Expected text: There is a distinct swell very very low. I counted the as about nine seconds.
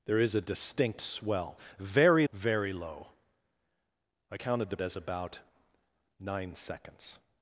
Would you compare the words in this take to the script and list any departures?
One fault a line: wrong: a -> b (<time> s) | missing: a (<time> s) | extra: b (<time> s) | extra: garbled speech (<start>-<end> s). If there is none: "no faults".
no faults